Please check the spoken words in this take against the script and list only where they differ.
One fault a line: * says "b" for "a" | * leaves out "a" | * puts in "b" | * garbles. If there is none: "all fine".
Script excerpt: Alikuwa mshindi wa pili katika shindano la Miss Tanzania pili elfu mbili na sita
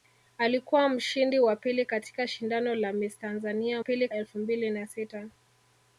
all fine